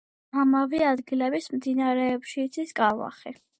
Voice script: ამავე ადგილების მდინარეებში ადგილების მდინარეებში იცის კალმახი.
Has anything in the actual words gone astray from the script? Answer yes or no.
yes